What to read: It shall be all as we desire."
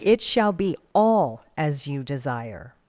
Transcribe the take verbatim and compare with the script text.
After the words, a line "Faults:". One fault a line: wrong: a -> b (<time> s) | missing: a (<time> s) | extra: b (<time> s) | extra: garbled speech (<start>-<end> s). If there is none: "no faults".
It shall be all as you desire."
Faults:
wrong: we -> you (1.9 s)